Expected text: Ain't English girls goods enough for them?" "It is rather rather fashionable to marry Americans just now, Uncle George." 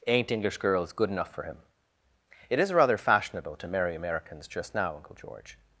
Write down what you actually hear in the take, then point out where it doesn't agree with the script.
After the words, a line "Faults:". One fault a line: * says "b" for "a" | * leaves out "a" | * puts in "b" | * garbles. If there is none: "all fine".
Ain't English girls good enough for him?" "It is rather fashionable to marry Americans just now, Uncle George."
Faults:
* says "good" for "goods"
* says "him" for "them"
* leaves out "rather"